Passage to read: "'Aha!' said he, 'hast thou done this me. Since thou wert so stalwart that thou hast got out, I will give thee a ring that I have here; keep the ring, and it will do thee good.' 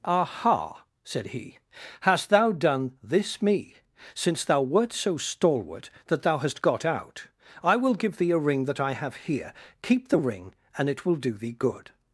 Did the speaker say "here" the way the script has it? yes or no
yes